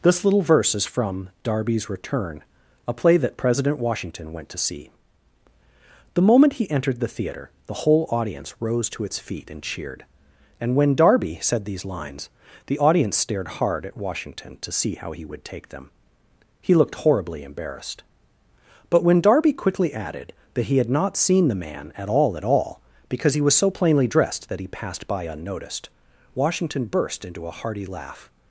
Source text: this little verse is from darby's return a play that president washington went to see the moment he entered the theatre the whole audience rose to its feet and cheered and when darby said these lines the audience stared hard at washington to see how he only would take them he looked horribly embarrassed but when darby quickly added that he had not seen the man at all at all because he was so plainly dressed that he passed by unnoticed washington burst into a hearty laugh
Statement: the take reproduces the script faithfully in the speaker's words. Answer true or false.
false